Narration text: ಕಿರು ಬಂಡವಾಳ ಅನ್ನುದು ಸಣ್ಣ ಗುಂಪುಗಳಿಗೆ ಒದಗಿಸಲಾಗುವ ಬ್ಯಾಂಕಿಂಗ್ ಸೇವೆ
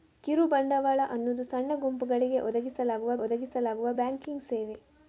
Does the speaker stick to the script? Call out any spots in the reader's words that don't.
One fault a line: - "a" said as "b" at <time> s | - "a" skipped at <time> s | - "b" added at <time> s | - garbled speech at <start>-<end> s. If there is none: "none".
- "ಒದಗಿಸಲಾಗುವ" added at 3.2 s